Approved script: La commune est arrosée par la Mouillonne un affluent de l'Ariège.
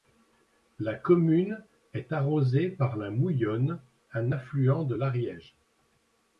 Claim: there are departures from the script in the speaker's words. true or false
false